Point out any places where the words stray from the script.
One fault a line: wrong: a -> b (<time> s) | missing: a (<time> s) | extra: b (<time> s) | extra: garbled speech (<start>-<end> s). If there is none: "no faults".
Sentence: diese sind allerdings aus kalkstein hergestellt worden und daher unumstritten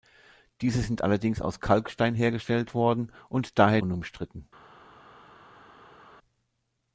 no faults